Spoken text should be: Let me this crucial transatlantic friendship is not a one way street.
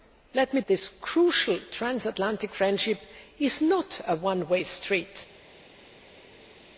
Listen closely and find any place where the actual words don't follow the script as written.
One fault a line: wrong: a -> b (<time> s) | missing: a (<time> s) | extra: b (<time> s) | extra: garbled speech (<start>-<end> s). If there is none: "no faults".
no faults